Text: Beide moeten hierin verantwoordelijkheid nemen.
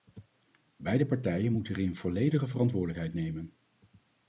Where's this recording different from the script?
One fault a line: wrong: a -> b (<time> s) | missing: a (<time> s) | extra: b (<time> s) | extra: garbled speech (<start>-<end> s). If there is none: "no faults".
extra: partijen (1.1 s)
extra: volledige (1.9 s)